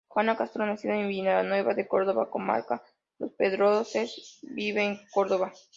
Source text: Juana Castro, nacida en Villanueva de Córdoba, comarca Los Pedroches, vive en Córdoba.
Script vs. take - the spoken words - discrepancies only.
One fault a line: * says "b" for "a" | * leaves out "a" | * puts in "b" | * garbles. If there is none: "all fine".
all fine